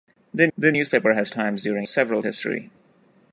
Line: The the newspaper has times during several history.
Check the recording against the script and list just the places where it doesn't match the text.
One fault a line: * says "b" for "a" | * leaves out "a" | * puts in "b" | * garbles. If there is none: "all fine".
all fine